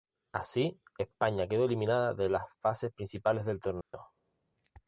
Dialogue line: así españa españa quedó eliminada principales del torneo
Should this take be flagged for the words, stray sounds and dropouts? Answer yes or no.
yes